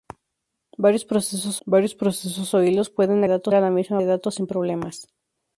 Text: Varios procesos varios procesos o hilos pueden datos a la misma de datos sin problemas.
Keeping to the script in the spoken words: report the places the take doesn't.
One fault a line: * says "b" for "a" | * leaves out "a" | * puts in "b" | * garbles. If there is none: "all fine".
all fine